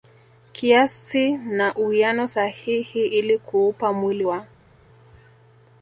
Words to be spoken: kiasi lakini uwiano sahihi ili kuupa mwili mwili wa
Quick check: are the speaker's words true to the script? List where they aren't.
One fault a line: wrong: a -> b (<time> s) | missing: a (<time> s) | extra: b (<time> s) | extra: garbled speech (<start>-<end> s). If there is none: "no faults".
wrong: lakini -> na (1.4 s)
missing: mwili (4.2 s)